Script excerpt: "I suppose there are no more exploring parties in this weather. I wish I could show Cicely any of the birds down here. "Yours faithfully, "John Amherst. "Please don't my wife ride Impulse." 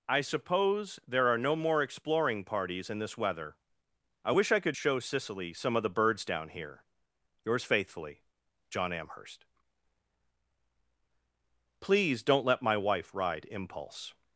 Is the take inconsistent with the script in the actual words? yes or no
yes